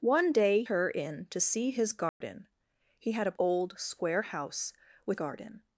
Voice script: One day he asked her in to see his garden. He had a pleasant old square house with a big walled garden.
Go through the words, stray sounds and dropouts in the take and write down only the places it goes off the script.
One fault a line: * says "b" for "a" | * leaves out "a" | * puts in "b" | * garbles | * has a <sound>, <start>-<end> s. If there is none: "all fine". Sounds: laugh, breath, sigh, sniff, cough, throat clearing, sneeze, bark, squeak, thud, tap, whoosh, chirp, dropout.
* leaves out "he asked"
* has a dropout, 2.1-2.2 s
* leaves out "pleasant"
* leaves out "a big walled"